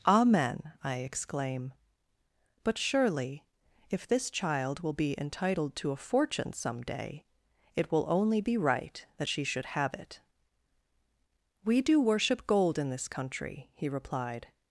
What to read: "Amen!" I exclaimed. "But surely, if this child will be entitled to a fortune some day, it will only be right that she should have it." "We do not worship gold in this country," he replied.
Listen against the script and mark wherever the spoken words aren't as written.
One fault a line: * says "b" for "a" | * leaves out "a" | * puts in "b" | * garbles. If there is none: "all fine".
* says "exclaim" for "exclaimed"
* leaves out "not"